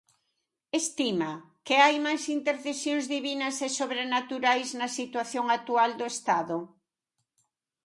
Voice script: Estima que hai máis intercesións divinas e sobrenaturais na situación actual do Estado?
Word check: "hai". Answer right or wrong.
right